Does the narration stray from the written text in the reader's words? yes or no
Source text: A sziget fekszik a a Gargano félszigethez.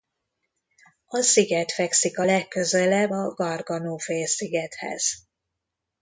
yes